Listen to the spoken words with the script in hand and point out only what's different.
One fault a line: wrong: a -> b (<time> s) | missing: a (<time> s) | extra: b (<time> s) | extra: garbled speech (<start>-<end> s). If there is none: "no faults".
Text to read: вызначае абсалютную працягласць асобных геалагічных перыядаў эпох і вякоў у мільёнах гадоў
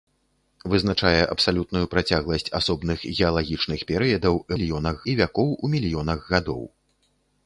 wrong: эпох -> мільёнах (4.5 s)